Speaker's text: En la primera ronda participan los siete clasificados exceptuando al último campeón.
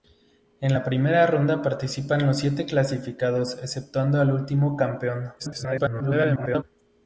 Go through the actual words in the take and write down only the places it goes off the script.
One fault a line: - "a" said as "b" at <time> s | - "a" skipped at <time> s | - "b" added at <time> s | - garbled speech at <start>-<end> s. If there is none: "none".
- garbled speech at 5.4-6.6 s